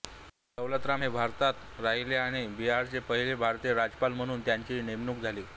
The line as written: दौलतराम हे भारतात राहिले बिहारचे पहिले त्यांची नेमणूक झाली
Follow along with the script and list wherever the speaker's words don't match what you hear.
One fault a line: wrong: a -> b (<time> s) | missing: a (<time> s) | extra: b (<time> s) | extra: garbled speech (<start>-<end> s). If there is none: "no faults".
extra: आणि (2.2 s)
extra: भारतीय राज्यपाल म्हणून (3.4 s)